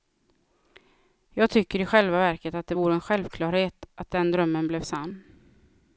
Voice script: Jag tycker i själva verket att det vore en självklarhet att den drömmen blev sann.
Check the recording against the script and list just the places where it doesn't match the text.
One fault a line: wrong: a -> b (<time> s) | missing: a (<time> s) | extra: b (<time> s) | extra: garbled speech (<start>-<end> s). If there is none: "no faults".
no faults